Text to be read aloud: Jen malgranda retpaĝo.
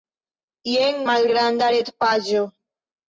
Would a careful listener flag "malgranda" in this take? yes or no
no